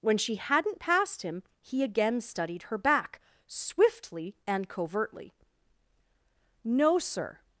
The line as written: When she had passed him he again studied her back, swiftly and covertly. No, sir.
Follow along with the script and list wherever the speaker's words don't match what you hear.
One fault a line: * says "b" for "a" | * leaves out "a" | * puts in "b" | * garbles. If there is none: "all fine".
* says "hadn't" for "had"